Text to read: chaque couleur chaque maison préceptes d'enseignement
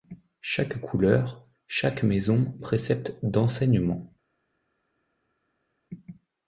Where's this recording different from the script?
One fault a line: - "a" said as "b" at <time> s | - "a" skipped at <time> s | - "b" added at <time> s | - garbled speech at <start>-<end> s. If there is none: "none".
none